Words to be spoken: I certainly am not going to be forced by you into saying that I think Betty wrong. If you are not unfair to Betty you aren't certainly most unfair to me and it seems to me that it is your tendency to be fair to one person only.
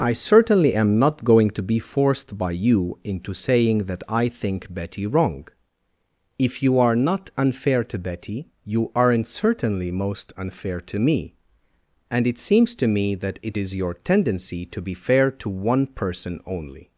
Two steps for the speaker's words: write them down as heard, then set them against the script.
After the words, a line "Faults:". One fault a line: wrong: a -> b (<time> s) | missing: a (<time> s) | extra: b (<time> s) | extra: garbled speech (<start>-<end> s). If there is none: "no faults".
I certainly am not going to be forced by you into saying that I think Betty wrong. If you are not unfair to Betty you aren't certainly most unfair to me and it seems to me that it is your tendency to be fair to one person only.
Faults:
no faults